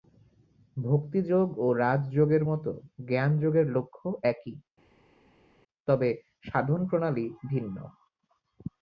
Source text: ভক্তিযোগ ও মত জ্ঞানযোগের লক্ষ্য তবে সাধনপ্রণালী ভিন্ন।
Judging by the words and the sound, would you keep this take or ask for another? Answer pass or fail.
fail